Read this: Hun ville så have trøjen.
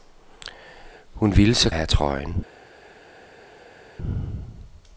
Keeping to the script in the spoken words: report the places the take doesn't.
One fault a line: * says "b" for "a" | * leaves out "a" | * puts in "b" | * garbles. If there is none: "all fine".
all fine